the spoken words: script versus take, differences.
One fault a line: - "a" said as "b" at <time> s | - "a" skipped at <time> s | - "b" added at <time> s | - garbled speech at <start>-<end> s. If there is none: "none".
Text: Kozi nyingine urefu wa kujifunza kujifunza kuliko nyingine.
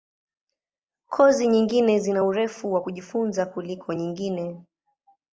- "zina" added at 2.0 s
- "kujifunza" skipped at 3.5 s